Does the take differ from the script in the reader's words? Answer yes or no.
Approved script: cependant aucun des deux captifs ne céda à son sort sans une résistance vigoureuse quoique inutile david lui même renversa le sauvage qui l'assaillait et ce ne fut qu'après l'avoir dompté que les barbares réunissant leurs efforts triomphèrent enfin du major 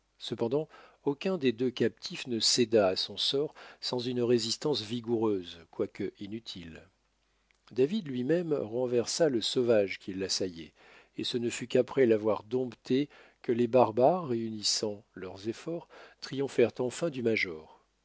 no